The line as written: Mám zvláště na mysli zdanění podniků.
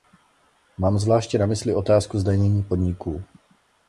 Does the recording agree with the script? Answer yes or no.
no